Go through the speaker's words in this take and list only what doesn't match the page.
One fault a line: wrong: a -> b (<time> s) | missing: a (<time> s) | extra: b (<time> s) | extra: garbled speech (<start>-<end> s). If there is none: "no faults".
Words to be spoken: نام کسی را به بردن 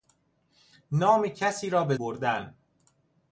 no faults